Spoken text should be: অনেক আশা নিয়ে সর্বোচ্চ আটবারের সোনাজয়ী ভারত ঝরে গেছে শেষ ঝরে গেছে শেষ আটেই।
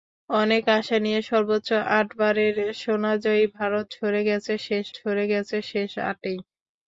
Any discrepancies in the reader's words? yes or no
no